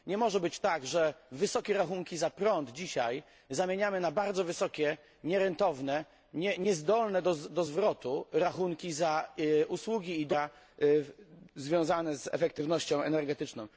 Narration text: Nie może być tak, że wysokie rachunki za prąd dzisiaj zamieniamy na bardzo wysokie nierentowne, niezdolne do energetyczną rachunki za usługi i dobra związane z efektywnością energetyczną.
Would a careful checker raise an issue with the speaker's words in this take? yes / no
yes